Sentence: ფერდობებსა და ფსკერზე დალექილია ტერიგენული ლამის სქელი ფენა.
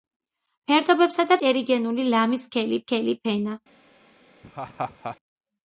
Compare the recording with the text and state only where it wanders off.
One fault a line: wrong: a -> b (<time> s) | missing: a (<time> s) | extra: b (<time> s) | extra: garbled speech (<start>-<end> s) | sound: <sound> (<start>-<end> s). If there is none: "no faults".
missing: ფსკერზე დალექილია (1.4 s)
extra: სქელი (2.8 s)
sound: laugh (4.4-5.2 s)